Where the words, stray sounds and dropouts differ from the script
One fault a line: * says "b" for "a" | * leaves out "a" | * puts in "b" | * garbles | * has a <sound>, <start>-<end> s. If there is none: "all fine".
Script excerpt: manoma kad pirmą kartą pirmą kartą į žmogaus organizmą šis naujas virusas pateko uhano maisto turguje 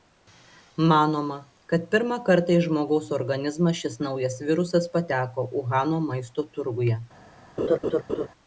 * leaves out "pirmą kartą"
* has a laugh, 7.6-8.3 s